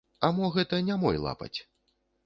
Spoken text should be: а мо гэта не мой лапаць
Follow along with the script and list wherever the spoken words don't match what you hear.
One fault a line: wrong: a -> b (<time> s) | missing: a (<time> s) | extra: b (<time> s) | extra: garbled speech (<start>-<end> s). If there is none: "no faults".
no faults